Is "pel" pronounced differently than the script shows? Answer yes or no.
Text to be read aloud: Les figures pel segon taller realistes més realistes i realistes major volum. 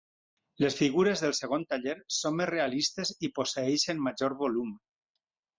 yes